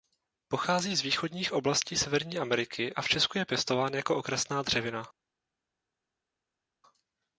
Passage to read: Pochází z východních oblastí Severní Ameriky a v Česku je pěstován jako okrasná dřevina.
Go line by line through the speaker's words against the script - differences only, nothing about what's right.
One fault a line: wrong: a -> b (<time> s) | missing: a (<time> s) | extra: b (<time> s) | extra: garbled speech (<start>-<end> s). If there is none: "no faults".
no faults